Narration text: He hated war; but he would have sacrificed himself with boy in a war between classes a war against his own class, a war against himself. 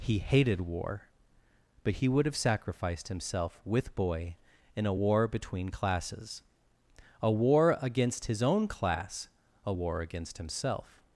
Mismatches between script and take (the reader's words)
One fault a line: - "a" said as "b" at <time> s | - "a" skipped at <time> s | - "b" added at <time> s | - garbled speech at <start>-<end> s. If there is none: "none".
none